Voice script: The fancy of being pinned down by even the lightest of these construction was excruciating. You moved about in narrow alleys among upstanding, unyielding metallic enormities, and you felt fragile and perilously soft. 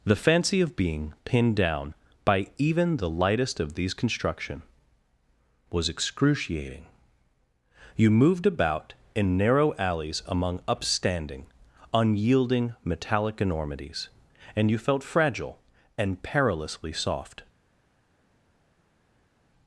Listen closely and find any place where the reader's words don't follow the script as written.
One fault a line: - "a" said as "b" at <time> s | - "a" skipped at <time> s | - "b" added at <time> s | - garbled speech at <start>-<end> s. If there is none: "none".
none